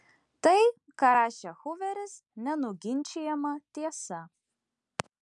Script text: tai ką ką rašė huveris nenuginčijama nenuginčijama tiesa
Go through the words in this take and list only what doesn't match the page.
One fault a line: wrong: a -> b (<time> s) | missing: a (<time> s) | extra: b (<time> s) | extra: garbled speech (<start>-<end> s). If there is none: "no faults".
missing: ką (1.1 s)
missing: nenuginčijama (3.5 s)